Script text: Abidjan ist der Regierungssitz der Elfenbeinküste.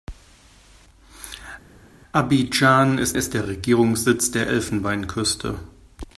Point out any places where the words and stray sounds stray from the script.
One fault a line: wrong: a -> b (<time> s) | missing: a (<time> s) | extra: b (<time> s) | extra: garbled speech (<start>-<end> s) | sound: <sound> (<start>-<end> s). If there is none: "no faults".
extra: ist (3.2 s)